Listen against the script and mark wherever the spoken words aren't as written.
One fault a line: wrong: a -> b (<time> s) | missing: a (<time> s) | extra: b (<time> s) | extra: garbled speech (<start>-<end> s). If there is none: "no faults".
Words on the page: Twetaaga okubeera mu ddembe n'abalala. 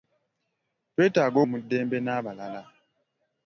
missing: okubeera (1.4 s)